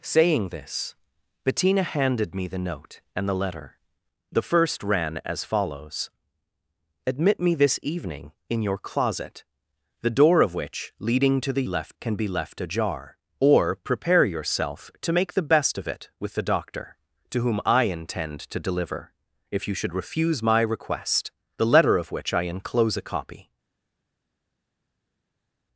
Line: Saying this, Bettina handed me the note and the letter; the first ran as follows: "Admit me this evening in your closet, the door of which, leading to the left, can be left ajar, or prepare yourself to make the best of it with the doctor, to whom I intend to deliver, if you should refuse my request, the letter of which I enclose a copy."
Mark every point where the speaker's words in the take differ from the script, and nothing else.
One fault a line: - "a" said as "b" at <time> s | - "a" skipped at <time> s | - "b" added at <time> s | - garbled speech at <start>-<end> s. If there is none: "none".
none